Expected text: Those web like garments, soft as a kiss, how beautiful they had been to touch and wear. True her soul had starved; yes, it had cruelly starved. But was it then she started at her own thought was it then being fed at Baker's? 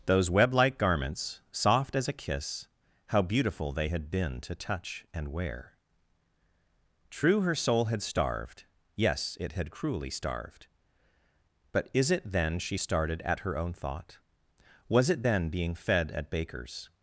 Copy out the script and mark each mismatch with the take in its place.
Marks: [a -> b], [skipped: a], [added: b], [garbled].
Those web like garments, soft as a kiss, how beautiful they had been to touch and wear. True her soul had starved; yes, it had cruelly starved. But [was -> is] it then she started at her own thought was it then being fed at Baker's?